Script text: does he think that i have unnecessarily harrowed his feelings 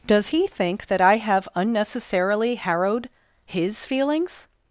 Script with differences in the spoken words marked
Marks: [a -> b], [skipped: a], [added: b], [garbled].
does he think that i have unnecessarily harrowed his feelings